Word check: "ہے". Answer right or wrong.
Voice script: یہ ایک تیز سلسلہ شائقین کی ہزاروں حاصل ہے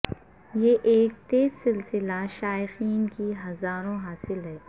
right